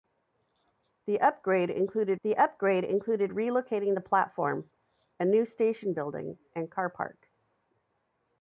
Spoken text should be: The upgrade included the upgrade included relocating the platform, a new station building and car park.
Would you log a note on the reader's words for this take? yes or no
no